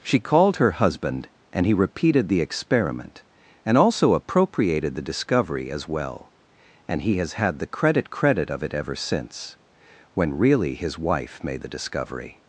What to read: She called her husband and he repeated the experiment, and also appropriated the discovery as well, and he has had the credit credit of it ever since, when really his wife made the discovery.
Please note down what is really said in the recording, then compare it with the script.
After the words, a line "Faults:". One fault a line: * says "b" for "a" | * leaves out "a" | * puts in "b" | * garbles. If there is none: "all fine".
She called her husband and he repeated the experiment, and also appropriated the discovery as well, and he has had the credit credit of it ever since, when really his wife made the discovery.
Faults:
all fine